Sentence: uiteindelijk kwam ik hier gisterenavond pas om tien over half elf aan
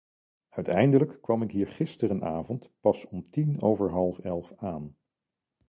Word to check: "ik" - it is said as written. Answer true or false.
true